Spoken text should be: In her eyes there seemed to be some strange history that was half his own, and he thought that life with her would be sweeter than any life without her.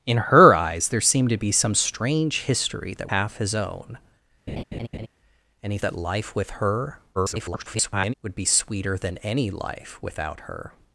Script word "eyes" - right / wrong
right